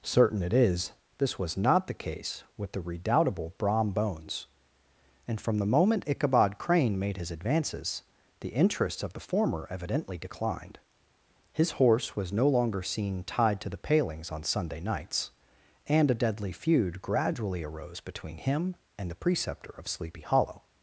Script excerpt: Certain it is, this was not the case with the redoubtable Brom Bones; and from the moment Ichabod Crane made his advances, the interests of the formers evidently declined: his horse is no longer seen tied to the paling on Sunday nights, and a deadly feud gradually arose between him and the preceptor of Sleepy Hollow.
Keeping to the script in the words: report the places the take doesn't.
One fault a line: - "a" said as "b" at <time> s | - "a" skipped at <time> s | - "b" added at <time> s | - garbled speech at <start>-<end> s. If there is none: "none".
- "formers" said as "former" at 9.2 s
- "is" said as "was" at 12.1 s
- "paling" said as "palings" at 13.8 s